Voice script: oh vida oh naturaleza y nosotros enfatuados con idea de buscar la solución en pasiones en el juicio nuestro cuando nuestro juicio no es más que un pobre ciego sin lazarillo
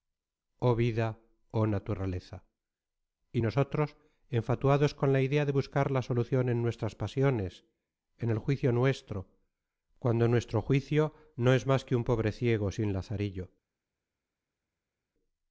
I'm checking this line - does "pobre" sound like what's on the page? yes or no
yes